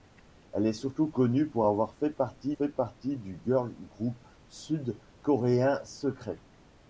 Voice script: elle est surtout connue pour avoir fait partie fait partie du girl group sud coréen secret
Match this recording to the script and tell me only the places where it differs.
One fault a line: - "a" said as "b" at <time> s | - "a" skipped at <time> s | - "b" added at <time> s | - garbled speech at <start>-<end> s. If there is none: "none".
none